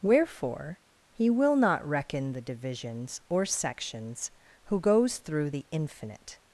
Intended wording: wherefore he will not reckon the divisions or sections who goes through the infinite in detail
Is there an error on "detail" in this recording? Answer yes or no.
yes